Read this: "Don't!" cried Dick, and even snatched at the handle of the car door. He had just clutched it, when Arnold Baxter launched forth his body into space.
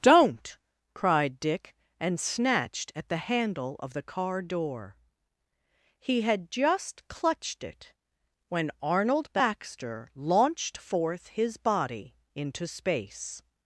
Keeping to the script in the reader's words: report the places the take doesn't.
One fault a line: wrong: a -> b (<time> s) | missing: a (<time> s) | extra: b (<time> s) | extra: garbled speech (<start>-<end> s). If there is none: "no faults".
missing: even (2.2 s)